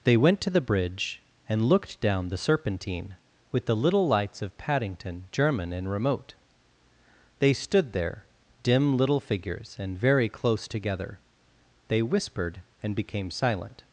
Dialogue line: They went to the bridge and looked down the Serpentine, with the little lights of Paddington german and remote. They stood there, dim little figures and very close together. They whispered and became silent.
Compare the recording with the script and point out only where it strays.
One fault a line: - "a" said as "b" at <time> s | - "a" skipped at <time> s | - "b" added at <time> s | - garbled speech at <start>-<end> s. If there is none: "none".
none